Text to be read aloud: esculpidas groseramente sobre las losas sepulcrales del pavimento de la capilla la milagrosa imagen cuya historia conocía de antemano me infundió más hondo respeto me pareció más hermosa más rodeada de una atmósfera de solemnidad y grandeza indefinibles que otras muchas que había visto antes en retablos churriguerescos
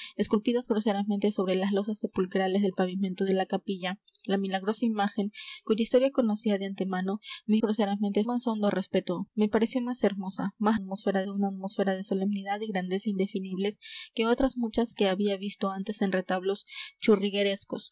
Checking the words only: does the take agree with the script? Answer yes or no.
no